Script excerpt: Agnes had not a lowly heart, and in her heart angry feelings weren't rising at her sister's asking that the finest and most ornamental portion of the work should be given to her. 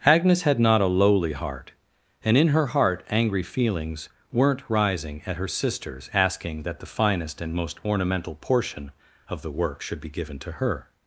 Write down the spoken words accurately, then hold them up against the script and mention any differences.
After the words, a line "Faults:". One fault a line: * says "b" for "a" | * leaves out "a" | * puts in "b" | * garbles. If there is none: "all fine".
Agnes had not a lowly heart, and in her heart angry feelings weren't rising at her sister's asking that the finest and most ornamental portion of the work should be given to her.
Faults:
all fine